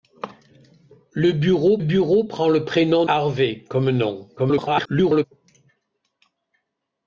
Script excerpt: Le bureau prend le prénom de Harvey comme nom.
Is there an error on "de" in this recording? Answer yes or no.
yes